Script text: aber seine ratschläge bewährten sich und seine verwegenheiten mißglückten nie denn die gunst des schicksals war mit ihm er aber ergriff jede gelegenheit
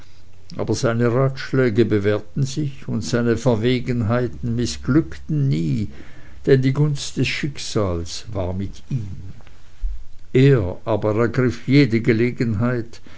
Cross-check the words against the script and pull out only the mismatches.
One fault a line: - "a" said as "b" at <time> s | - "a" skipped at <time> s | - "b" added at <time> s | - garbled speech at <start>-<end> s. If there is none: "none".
none